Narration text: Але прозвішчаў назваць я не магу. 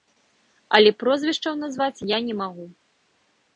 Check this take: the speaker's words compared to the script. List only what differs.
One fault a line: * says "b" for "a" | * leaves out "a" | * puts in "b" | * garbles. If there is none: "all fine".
all fine